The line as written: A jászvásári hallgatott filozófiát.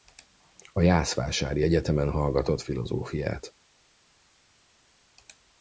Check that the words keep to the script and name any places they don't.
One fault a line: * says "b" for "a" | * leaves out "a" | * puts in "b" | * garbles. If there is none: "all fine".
* puts in "egyetemen"